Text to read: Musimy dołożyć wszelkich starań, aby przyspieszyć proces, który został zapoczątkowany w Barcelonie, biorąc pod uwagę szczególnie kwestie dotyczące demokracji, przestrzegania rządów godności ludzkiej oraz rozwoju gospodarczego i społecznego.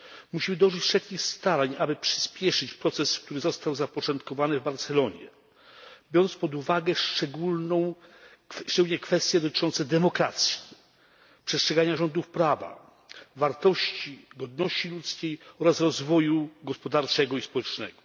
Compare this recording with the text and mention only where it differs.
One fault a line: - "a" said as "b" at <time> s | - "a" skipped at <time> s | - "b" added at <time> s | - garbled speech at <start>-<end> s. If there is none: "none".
- "prawa wartości" added at 12.3 s